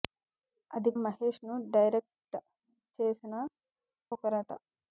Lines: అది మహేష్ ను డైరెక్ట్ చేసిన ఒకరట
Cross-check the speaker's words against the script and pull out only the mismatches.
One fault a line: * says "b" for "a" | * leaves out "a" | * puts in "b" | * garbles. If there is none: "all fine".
all fine